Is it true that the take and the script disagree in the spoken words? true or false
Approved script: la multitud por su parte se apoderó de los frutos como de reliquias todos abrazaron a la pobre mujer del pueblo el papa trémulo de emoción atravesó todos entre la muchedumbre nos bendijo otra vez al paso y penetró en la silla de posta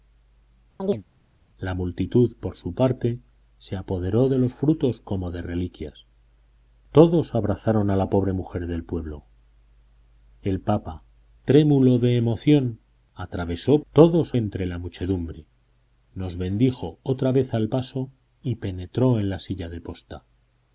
false